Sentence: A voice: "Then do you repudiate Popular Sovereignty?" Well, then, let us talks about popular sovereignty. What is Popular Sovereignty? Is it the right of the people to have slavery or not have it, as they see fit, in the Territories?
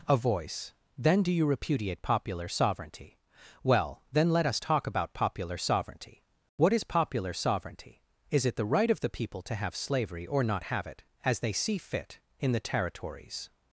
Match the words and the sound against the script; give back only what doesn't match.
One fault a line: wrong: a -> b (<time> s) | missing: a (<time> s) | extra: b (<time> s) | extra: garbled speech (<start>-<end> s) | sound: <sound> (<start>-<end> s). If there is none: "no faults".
wrong: talks -> talk (4.6 s)